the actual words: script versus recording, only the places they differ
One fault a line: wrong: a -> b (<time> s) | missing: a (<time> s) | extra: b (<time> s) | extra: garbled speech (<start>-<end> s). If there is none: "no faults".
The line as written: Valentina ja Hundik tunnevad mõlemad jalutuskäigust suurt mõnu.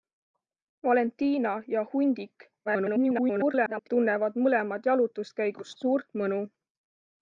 extra: garbled speech (2.7-3.9 s)